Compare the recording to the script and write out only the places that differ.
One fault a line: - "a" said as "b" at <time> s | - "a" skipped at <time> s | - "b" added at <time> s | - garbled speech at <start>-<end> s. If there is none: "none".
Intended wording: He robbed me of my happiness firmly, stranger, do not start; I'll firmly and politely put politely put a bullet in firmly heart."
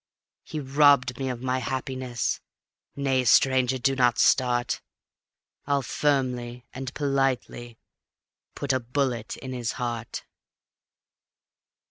- "firmly" said as "nay" at 3.0 s
- "politely put" skipped at 8.7 s
- "firmly" said as "his" at 9.5 s